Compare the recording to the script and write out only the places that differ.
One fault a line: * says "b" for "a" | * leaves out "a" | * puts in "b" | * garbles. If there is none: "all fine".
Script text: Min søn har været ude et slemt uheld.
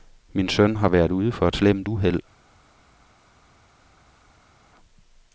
* puts in "for"